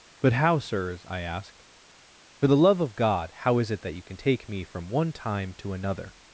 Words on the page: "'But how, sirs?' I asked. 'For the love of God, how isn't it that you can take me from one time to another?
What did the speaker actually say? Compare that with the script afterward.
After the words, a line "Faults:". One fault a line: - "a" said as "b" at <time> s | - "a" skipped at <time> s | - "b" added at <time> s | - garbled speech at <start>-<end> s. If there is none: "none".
"'But how, sirs?' I asked. 'For the love of God, how is it that you can take me from one time to another?
Faults:
- "isn't" said as "is" at 3.6 s